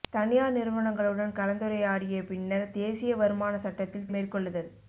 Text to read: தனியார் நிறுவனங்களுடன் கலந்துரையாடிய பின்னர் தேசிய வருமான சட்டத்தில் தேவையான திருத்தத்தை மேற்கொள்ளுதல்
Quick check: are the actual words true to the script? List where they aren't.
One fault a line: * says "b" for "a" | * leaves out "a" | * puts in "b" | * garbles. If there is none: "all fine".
* leaves out "தேவையான திருத்தத்தை"